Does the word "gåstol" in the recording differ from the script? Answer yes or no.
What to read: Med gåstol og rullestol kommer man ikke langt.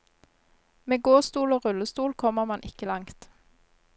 no